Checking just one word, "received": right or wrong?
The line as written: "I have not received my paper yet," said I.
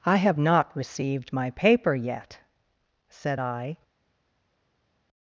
right